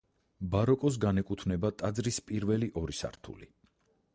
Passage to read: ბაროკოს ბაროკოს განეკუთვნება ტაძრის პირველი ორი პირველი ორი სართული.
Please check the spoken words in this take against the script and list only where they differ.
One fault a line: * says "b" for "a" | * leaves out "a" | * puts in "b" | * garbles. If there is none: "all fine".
* leaves out "ბაროკოს"
* leaves out "პირველი ორი"